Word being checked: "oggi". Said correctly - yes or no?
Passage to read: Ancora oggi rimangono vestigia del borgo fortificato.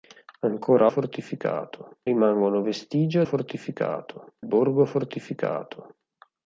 no